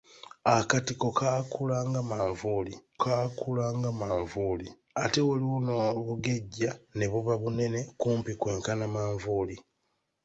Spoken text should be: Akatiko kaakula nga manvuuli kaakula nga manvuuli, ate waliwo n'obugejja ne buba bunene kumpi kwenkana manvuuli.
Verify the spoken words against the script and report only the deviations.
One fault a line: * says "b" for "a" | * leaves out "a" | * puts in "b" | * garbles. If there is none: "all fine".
all fine